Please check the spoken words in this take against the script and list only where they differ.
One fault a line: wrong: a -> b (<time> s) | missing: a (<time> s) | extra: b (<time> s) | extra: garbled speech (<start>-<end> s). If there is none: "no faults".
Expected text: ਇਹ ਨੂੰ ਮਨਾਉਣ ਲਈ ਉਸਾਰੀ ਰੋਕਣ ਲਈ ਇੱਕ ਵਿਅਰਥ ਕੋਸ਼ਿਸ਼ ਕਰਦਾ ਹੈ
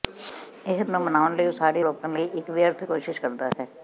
no faults